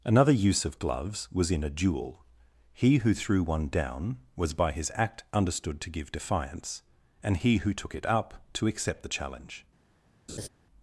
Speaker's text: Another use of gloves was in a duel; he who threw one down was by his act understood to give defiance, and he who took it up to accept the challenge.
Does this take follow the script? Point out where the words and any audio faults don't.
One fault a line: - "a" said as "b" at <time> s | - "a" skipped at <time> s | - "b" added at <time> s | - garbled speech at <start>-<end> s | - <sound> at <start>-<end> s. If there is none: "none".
- laugh at 10.3-10.5 s